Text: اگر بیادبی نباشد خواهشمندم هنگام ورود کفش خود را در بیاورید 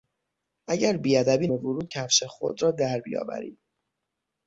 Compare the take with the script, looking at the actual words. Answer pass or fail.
fail